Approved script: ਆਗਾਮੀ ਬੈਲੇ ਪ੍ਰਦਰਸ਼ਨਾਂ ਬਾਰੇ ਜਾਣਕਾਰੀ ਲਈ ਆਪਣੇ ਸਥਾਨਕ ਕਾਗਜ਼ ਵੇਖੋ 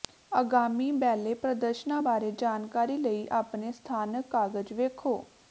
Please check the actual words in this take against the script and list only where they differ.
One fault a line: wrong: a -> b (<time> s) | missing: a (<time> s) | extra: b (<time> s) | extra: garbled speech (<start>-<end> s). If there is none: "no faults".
no faults